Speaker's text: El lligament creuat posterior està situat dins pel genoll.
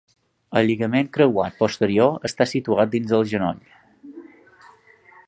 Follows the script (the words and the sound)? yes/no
no